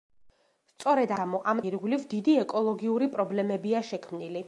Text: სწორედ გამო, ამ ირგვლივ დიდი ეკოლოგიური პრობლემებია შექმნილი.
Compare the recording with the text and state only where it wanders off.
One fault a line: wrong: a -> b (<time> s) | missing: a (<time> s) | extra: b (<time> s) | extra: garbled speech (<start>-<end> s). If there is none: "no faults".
no faults